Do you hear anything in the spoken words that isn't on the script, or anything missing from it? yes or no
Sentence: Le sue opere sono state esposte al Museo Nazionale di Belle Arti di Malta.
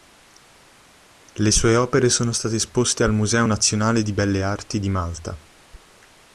no